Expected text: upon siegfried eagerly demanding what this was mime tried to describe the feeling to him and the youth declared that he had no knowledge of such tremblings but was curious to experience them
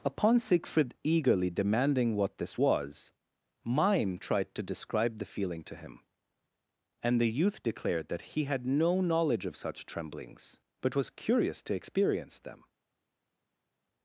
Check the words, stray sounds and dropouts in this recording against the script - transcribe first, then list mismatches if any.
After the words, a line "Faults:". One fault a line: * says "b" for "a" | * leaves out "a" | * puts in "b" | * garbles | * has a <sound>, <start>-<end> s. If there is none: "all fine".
upon siegfried eagerly demanding what this was mime tried to describe the feeling to him and the youth declared that he had no knowledge of such tremblings but was curious to experience them
Faults:
all fine